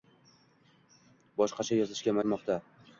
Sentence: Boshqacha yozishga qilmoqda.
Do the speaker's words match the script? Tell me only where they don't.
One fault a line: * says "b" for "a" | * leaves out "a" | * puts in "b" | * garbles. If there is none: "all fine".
all fine